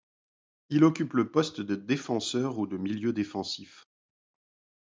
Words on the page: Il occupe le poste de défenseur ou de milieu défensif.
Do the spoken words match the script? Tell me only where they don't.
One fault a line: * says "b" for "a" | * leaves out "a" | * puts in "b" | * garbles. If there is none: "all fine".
all fine